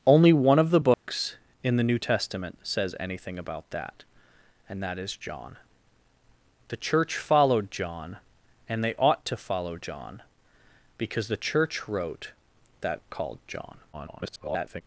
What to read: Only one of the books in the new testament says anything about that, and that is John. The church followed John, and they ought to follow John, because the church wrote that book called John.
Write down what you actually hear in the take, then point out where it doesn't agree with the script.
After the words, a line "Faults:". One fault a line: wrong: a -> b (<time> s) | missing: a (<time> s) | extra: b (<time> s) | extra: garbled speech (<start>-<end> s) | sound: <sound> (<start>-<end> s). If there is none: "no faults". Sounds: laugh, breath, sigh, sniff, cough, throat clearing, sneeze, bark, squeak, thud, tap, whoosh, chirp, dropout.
Only one of the books in the new testament says anything about that, and that is John. The church followed John, and they ought to follow John, because the church wrote that called John. [garbled]
Faults:
sound: dropout (0.9-1.1 s)
missing: book (13.0 s)
extra: garbled speech (13.9-14.8 s)